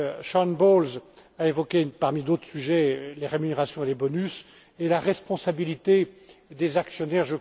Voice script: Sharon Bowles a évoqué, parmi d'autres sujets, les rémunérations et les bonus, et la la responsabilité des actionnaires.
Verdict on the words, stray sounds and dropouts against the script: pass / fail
fail